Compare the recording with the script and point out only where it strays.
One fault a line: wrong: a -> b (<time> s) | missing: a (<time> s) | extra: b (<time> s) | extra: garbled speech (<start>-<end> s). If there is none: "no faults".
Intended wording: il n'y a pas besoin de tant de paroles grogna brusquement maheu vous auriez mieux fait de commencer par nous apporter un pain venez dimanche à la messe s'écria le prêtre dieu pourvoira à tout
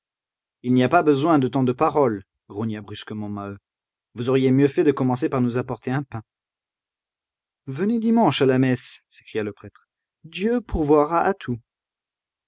no faults